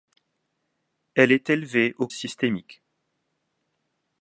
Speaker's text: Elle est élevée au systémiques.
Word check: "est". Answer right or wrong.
right